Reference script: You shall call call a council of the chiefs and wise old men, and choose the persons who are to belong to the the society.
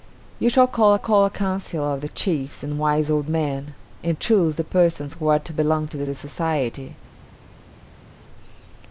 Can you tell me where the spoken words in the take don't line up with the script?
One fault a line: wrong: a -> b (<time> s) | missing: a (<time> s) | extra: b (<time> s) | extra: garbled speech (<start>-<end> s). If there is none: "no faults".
no faults